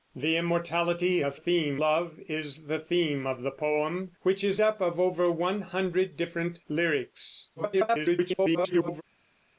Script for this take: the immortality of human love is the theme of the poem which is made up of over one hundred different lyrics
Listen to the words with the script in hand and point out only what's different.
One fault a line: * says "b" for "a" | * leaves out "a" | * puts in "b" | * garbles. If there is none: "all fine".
* says "theme" for "human"
* leaves out "made"
* garbles